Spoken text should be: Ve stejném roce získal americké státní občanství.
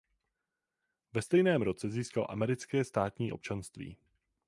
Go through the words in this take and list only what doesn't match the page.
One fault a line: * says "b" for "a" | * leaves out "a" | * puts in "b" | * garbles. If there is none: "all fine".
all fine